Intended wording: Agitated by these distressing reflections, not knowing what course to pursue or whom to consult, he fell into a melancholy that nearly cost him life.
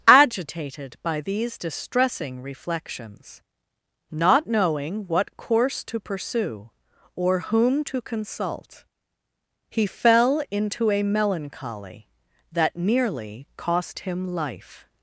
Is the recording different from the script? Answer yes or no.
no